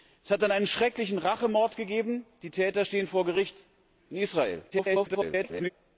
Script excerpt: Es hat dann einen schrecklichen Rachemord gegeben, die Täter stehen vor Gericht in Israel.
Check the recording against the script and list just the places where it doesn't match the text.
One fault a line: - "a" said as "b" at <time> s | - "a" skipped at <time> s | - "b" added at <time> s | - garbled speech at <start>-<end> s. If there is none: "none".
- garbled speech at 4.7-5.7 s